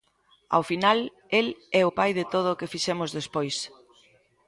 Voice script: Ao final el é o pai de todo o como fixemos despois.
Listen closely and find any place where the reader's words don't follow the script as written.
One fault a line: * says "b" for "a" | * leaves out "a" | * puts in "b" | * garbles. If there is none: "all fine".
* says "que" for "como"